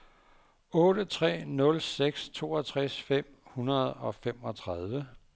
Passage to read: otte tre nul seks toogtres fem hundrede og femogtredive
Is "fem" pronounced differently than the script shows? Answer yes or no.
no